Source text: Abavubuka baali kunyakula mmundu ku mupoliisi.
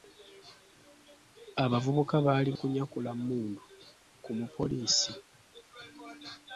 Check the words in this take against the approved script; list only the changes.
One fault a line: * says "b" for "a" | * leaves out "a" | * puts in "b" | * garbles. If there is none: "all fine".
all fine